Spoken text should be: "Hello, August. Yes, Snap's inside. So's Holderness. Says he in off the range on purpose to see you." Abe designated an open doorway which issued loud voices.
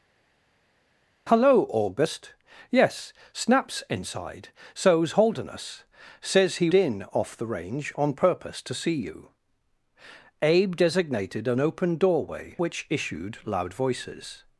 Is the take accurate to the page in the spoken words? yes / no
yes